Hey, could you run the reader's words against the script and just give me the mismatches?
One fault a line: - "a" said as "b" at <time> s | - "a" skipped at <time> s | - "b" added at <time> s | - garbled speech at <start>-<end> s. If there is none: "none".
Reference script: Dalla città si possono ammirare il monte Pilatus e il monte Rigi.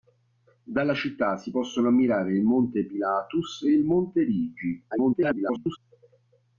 - garbled speech at 4.9-5.8 s